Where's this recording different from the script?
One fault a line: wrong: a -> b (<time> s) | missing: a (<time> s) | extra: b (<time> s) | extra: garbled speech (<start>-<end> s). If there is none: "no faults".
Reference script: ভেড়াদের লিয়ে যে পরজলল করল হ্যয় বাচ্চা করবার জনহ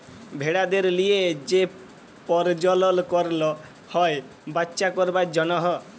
no faults